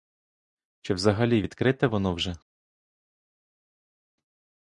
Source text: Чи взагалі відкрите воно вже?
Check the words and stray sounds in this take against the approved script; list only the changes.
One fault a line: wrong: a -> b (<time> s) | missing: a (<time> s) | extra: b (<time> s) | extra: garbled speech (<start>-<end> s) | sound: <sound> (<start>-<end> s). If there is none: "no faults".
no faults